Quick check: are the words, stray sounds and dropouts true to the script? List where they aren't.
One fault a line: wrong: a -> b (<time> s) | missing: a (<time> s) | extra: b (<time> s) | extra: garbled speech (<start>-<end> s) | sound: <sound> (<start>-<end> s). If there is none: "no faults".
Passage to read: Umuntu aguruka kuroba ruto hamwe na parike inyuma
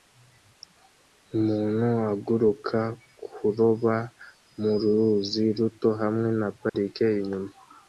extra: mu ruzi (4.6 s)
sound: dropout (6.7-6.7 s)